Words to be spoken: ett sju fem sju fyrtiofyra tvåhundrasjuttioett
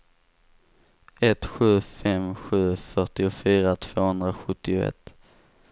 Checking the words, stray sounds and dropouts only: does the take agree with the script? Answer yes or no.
yes